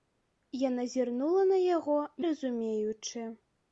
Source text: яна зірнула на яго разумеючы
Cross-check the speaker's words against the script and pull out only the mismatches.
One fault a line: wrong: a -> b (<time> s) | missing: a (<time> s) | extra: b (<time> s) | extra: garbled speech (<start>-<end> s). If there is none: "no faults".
no faults